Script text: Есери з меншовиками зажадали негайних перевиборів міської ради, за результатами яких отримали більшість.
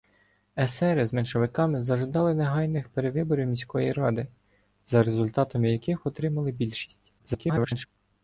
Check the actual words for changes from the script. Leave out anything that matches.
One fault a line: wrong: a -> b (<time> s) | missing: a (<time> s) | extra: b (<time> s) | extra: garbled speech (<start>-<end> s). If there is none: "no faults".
extra: garbled speech (7.2-7.9 s)